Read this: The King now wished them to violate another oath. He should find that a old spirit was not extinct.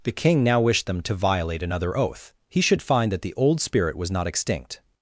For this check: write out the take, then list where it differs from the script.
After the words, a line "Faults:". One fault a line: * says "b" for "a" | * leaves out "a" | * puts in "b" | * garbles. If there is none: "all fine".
The King now wished them to violate another oath. He should find that the old spirit was not extinct.
Faults:
* says "the" for "a"